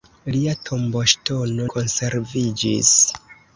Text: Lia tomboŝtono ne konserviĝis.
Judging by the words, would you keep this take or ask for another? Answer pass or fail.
fail